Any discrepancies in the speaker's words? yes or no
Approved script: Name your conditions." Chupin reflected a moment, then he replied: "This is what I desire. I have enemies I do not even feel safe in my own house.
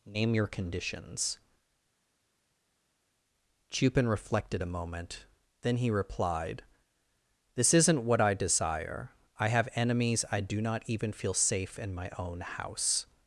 yes